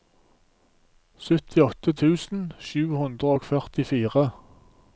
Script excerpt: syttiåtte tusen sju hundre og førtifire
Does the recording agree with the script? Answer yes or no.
yes